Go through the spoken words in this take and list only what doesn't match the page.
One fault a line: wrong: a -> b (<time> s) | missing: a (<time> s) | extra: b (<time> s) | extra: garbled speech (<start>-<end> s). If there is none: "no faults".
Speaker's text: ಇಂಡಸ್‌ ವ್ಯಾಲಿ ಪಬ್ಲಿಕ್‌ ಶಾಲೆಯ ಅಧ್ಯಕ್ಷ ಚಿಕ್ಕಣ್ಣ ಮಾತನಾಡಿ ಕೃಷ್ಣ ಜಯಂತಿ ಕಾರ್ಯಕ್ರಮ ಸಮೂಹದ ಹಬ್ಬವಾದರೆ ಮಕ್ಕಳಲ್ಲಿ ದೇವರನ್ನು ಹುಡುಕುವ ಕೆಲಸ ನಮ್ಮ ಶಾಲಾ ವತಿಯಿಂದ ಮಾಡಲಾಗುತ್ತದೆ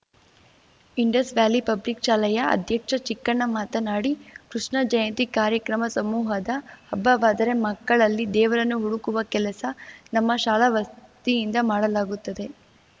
no faults